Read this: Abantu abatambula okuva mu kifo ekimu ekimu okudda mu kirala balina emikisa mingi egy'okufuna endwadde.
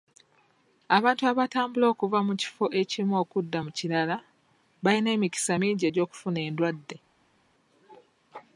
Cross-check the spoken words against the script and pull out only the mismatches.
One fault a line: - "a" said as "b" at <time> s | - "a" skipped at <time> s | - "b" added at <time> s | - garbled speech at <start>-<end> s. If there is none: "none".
- "ekimu" skipped at 3.1 s